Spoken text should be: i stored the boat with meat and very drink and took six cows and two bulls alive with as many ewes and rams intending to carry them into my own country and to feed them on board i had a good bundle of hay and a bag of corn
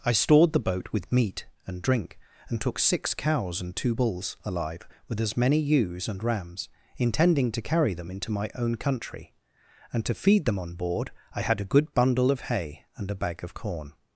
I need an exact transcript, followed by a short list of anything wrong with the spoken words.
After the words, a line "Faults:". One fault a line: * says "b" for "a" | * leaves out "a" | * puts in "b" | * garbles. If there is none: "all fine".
i stored the boat with meat and drink and took six cows and two bulls alive with as many ewes and rams intending to carry them into my own country and to feed them on board i had a good bundle of hay and a bag of corn
Faults:
* leaves out "very"